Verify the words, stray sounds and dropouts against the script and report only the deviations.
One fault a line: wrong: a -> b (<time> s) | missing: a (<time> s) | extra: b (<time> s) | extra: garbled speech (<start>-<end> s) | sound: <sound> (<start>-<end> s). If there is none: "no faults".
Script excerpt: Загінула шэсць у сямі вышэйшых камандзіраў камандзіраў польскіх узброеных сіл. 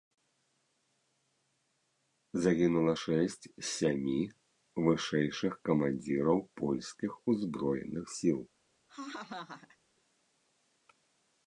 wrong: у -> з (3.5 s)
missing: камандзіраў (6.4 s)
sound: laugh (8.9-9.8 s)